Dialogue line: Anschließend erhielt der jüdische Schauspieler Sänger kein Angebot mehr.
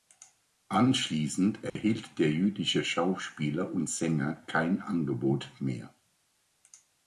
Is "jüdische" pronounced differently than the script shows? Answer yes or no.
no